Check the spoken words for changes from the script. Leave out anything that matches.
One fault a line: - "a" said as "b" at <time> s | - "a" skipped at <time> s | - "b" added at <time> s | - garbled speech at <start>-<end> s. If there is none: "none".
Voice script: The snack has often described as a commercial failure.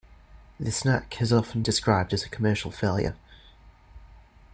none